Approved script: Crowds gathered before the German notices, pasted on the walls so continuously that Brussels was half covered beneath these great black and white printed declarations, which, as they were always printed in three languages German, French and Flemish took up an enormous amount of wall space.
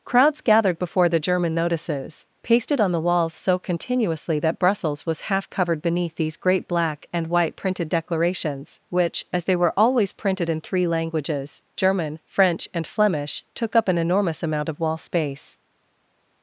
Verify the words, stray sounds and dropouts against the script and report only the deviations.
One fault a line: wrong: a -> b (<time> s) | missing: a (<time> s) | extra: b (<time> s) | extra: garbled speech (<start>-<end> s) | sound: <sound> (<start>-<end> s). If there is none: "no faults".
no faults